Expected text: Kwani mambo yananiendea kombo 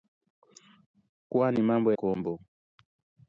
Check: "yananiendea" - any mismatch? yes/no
yes